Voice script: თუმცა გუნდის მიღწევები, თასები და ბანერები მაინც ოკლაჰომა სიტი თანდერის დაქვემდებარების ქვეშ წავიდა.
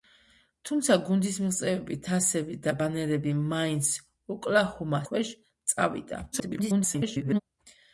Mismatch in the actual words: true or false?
true